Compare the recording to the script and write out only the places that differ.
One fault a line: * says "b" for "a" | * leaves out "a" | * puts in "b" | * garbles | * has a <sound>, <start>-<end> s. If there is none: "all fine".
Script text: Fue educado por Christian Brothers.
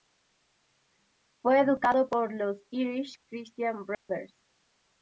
* puts in "los Irish"
* has a dropout, 3.9-4.1 s